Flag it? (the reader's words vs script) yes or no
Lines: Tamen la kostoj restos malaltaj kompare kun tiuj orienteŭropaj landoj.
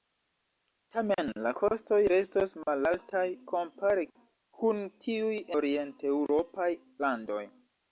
no